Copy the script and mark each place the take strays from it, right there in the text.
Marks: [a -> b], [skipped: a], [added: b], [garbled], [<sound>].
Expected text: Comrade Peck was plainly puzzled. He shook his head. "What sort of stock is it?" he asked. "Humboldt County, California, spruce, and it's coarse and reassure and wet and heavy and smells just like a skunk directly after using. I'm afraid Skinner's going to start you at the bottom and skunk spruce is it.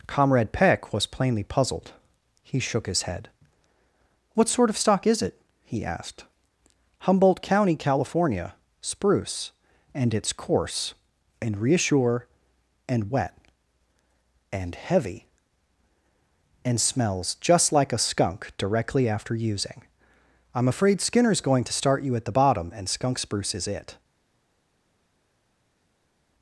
Comrade Peck was plainly puzzled. He shook his head. "What sort of stock is it?" he asked. "Humboldt County, California, spruce, and it's coarse and reassure and wet and heavy and smells just like a skunk directly after using. I'm afraid Skinner's going to start you at the bottom and skunk spruce is it.